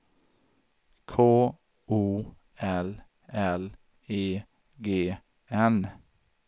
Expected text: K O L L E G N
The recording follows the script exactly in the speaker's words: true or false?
true